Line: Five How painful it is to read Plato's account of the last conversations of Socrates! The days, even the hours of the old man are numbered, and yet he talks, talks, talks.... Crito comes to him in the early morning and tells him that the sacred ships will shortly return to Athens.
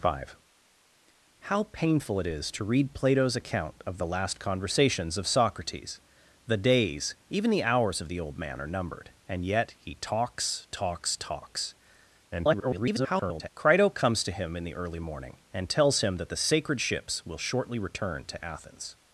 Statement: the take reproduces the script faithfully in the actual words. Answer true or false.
false